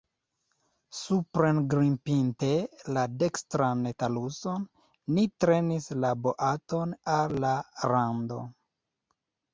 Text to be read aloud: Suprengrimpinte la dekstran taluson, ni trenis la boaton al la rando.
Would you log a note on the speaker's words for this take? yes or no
no